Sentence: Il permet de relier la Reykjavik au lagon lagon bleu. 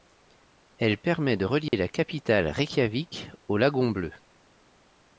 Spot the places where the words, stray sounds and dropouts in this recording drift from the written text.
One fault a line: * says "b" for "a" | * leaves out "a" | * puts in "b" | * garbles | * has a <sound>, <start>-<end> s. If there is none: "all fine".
* says "Elle" for "Il"
* has a dropout, 1.7-1.7 s
* puts in "capitale"
* leaves out "lagon"